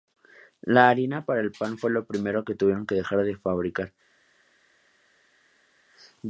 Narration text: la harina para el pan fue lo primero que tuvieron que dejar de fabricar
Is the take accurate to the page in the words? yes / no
yes